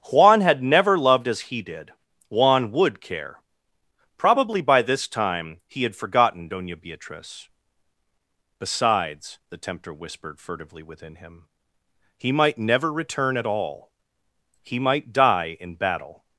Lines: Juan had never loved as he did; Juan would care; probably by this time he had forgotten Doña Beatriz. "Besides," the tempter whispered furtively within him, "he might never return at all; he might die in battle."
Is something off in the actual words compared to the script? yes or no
no